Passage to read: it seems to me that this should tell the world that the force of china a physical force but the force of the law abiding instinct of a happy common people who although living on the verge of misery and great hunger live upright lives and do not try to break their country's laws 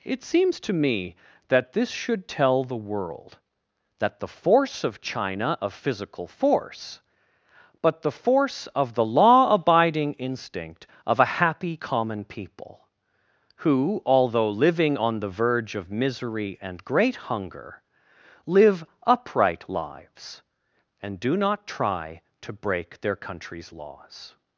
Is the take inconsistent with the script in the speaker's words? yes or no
no